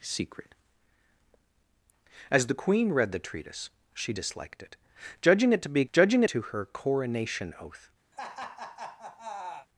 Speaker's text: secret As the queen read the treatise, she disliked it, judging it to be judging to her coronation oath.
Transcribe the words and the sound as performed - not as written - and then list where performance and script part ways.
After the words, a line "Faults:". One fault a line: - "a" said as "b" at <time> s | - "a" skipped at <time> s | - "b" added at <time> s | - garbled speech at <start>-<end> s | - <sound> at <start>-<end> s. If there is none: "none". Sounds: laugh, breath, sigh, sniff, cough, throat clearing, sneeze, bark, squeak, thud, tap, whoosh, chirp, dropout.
secret As the queen read the treatise, she disliked it, judging it to be judging to her coronation oath.
Faults:
- laugh at 8.1-9.7 s